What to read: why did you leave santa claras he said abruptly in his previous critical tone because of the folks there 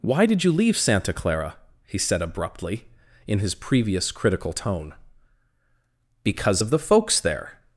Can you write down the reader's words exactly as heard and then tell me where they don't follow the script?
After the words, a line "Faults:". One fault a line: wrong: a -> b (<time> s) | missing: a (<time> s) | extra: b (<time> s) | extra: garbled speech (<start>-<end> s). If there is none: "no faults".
why did you leave santa clara he said abruptly in his previous critical tone because of the folks there
Faults:
wrong: claras -> clara (1.1 s)